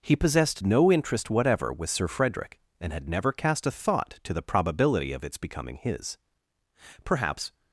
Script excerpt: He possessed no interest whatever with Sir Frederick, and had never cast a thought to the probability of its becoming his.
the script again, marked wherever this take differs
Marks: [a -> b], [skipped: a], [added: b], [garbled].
He possessed no interest whatever with Sir Frederick, and had never cast a thought to the probability of its becoming his. [added: Perhaps]